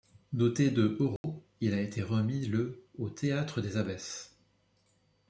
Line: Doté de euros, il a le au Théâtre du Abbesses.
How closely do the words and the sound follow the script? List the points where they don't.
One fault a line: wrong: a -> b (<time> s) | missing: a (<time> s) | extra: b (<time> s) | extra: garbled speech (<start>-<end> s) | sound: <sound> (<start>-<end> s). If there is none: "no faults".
sound: dropout (1.2-1.2 s)
extra: été remis (1.8 s)
wrong: du -> des (3.6 s)